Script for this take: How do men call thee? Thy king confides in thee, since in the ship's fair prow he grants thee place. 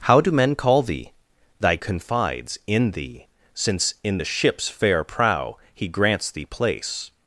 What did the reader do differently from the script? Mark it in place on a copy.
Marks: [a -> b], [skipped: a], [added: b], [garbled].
How do men call thee? Thy [skipped: king] confides in thee, since in the ship's fair prow he grants thee place.